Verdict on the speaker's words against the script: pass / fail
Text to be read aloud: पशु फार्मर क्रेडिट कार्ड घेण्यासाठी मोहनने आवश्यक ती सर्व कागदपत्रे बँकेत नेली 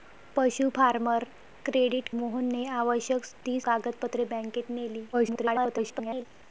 fail